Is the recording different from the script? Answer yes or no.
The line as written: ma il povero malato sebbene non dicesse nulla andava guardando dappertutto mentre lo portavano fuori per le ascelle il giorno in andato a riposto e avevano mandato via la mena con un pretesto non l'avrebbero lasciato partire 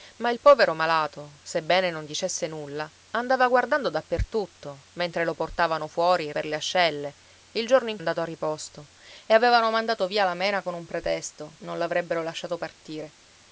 no